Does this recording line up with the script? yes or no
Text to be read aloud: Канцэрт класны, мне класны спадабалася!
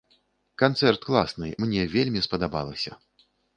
no